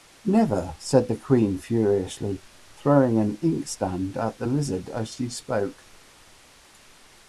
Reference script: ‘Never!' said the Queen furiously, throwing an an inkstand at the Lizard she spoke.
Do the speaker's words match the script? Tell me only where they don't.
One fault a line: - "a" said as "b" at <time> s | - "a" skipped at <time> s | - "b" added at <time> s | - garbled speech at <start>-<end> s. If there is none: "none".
- "an" skipped at 3.4 s
- "as" added at 4.9 s